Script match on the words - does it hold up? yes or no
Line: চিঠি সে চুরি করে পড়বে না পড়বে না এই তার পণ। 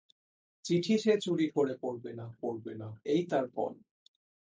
yes